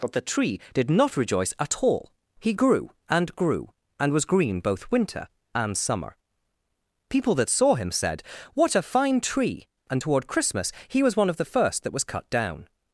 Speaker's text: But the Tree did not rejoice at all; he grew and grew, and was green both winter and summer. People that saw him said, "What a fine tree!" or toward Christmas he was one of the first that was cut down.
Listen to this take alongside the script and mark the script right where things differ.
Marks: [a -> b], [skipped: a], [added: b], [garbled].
But the Tree did not rejoice at all; he grew and grew, and was green both winter and summer. People that saw him said, "What a fine tree!" [or -> and] toward Christmas he was one of the first that was cut down.